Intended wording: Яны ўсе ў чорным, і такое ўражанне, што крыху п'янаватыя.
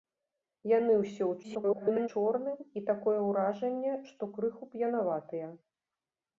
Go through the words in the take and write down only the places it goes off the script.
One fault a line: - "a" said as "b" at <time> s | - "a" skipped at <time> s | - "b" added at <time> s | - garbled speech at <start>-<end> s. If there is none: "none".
- garbled speech at 1.4-2.1 s